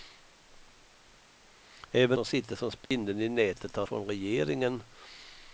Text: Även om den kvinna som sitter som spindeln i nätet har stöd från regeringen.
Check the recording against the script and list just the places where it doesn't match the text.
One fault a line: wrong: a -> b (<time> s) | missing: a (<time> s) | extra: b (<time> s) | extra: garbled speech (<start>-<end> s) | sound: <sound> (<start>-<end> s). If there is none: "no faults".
missing: om den kvinna (2.2 s)
sound: dropout (2.9-2.9 s)
missing: stöd (3.9 s)